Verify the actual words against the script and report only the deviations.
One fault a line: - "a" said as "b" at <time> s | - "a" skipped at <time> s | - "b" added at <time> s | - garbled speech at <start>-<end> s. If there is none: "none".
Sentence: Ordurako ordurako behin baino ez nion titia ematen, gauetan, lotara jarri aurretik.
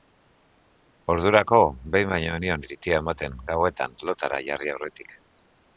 - "ordurako" skipped at 1.6 s